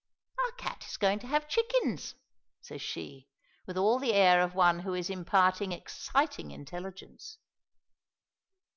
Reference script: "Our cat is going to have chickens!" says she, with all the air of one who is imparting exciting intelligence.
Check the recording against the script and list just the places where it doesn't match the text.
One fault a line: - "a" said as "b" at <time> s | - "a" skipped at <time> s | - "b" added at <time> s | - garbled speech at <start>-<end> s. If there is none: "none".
none